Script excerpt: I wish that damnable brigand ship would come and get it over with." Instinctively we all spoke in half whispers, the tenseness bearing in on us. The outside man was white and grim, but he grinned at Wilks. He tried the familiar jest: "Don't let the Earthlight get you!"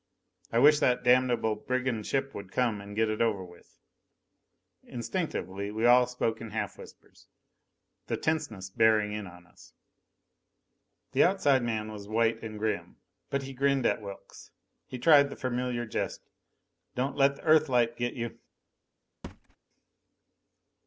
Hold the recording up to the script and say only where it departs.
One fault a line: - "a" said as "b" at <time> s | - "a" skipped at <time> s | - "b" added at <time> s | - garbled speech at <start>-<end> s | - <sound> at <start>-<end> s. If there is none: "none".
- thud at 19.2-19.6 s